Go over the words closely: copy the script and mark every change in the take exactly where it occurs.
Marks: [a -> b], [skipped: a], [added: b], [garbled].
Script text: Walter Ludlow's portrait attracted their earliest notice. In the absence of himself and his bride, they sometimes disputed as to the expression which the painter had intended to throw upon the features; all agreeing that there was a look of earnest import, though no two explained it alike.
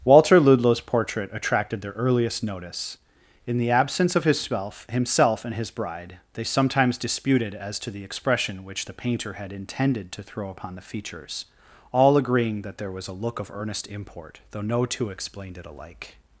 Walter Ludlow's portrait attracted their earliest notice. In the absence of himself [added: himself] and his bride, they sometimes disputed as to the expression which the painter had intended to throw upon the features; all agreeing that there was a look of earnest import, though no two explained it alike.